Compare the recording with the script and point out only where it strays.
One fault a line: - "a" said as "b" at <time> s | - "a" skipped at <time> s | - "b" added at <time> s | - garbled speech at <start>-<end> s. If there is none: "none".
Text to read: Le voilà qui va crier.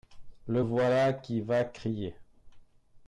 none